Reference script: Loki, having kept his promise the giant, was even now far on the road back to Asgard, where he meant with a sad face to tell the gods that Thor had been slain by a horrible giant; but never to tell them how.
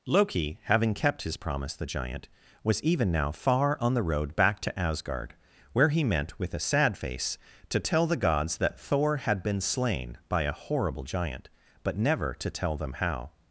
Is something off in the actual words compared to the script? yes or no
no